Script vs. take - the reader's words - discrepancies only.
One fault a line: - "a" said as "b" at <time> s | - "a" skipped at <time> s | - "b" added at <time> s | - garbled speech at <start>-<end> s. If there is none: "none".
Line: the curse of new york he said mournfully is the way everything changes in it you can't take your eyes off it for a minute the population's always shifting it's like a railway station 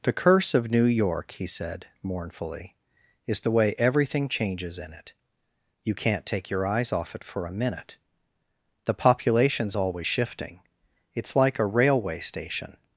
none